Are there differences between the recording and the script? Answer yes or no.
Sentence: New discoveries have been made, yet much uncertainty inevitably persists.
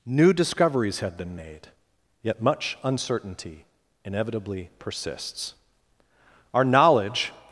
yes